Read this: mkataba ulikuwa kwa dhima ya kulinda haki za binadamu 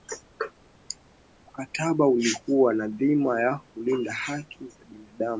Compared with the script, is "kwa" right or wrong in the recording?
wrong